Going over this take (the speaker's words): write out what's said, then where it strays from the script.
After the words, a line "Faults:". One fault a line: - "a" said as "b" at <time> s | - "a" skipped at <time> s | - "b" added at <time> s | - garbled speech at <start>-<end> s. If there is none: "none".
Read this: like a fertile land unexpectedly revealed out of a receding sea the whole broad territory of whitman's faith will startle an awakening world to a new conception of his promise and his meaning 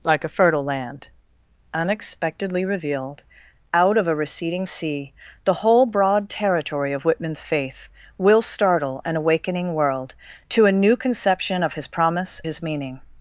like a fertile land unexpectedly revealed out of a receding sea the whole broad territory of whitman's faith will startle an awakening world to a new conception of his promise his meaning
Faults:
- "and" skipped at 12.4 s